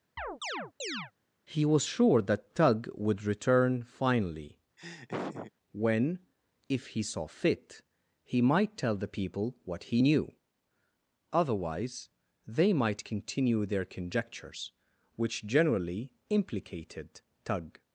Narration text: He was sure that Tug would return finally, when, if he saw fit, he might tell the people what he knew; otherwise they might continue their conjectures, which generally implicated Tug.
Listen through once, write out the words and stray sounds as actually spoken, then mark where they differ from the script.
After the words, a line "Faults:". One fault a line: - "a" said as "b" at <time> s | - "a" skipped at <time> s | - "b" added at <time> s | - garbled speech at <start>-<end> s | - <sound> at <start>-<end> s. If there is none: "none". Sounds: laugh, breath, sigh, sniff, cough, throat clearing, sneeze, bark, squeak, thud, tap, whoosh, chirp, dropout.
He was sure that Tug would return finally, when, if he saw fit, he might tell the people what he knew; otherwise they might continue their conjectures, which generally implicated Tug.
Faults:
- chirp at 0.2-1.1 s
- laugh at 4.8-5.5 s